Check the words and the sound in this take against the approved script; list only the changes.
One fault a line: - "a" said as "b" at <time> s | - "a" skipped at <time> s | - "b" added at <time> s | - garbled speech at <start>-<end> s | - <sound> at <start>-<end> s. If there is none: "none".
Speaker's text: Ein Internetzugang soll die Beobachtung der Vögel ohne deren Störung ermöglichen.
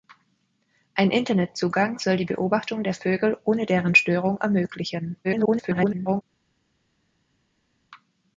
- garbled speech at 5.2-6.2 s